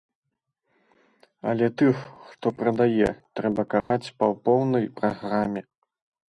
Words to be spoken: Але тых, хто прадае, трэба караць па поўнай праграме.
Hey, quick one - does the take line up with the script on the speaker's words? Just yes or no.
yes